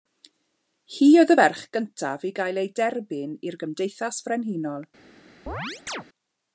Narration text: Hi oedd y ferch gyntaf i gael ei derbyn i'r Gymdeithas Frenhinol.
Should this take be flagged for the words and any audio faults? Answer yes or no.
yes